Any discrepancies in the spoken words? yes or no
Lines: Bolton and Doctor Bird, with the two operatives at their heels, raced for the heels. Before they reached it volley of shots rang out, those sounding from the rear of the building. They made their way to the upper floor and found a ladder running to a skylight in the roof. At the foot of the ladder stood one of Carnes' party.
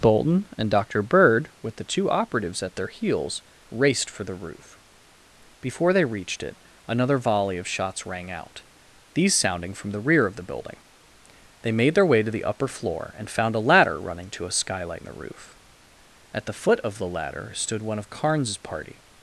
yes